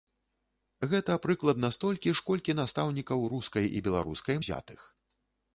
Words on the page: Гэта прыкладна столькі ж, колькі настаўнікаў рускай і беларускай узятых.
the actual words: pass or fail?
pass